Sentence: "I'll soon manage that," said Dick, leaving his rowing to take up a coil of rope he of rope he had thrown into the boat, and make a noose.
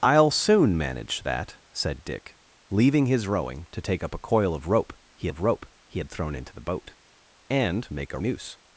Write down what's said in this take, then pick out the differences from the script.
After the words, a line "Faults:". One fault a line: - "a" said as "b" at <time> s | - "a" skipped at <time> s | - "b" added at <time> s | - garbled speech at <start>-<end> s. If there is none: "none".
"I'll soon manage that," said Dick, leaving his rowing to take up a coil of rope he of rope he had thrown into the boat, and make a noose.
Faults:
none